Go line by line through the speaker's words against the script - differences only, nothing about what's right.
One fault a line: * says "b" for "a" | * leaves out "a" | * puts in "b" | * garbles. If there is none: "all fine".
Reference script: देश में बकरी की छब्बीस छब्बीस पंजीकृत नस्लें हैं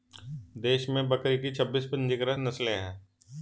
* leaves out "छब्बीस"